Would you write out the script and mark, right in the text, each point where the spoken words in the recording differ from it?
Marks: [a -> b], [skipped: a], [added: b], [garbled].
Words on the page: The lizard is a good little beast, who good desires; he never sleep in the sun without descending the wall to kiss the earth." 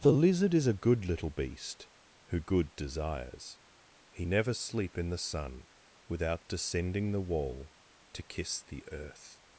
The lizard is a good little beast, who good desires; he never sleep in the sun without descending the wall to kiss the earth."